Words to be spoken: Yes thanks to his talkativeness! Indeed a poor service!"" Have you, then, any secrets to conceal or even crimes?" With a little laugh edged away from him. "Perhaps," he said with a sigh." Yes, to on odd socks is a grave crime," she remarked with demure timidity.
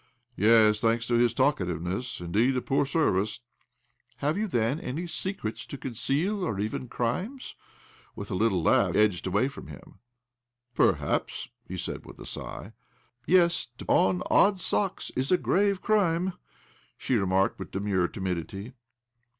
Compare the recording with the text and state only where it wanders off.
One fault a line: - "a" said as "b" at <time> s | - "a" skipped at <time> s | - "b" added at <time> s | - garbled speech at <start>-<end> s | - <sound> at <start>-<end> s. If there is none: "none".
none